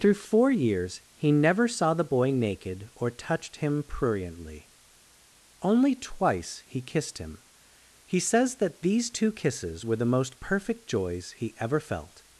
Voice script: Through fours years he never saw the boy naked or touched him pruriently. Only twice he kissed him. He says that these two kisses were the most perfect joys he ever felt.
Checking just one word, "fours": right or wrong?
wrong